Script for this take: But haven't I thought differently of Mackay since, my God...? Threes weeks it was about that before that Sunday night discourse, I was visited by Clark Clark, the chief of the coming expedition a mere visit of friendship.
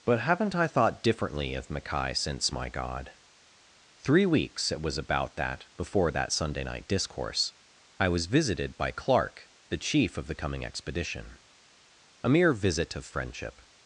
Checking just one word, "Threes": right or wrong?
wrong